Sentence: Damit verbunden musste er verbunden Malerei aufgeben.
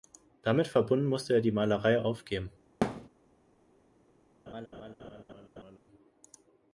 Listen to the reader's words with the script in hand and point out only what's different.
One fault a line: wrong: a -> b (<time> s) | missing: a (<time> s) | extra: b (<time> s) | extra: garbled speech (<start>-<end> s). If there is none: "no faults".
wrong: verbunden -> die (1.4 s)